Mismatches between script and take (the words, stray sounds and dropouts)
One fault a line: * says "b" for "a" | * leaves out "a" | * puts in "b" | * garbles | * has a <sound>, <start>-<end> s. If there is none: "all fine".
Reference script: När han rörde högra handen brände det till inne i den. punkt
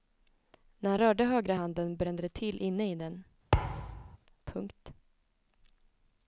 * has a thud, 3.5-4.2 s